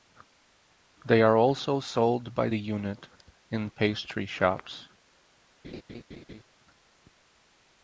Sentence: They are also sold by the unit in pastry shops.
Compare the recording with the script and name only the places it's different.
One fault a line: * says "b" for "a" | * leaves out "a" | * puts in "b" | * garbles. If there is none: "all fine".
all fine